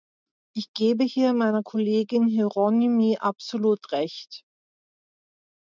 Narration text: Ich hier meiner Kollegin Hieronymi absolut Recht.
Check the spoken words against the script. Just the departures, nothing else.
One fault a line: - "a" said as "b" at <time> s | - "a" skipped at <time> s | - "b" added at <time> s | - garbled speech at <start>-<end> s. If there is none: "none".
- "gebe" added at 0.7 s